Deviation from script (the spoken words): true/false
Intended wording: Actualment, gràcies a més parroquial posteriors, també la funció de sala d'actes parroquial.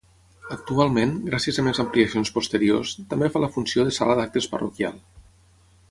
true